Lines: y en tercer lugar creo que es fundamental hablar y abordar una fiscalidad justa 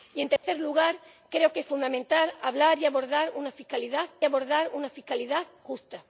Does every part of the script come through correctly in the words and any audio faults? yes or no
no